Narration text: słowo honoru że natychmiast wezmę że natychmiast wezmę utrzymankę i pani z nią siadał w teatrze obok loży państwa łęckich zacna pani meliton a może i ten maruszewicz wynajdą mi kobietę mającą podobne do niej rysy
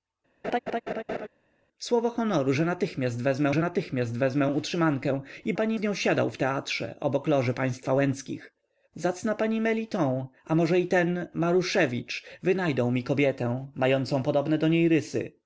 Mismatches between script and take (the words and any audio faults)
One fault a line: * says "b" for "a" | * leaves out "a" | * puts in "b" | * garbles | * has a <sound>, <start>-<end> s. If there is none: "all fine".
* has a laugh, 0.4-1.3 s